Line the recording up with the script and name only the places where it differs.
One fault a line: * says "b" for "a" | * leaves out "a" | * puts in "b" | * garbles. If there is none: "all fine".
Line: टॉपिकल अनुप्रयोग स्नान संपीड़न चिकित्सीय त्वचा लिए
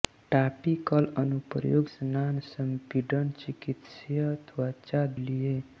all fine